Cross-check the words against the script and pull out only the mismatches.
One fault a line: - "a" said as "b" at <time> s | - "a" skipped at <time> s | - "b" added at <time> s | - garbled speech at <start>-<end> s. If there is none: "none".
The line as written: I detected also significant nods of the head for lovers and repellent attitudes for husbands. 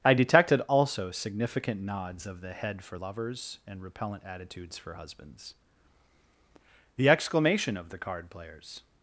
- "The exclamation of the card players" added at 6.9 s